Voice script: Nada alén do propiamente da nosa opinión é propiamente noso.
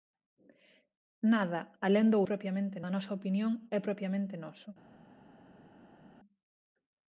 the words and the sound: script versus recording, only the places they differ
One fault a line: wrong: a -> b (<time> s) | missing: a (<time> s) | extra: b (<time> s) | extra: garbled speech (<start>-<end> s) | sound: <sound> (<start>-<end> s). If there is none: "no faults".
no faults